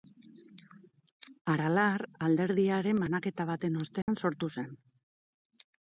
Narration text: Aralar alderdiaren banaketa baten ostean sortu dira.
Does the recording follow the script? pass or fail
fail